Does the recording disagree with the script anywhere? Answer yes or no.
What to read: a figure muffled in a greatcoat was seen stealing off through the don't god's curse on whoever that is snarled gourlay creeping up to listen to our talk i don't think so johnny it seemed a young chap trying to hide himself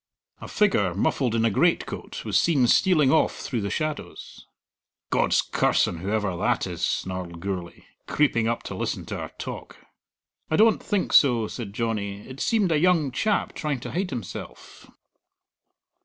yes